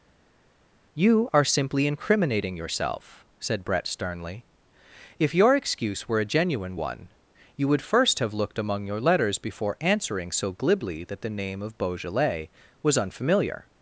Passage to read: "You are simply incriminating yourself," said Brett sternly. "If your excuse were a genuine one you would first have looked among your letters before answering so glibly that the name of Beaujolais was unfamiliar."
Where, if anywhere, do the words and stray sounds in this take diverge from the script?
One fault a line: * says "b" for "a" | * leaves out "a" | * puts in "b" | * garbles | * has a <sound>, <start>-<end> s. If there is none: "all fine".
all fine